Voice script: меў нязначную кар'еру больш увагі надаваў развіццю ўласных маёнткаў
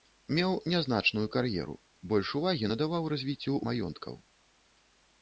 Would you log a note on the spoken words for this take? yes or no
yes